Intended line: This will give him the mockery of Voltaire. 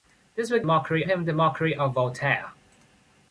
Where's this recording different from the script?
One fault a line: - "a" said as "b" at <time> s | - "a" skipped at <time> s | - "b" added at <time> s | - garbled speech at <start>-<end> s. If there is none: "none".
- "give" said as "mockery" at 0.6 s